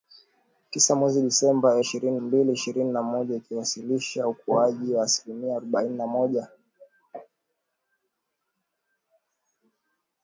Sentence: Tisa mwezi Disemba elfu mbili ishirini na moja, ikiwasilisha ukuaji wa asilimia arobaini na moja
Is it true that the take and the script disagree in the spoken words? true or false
true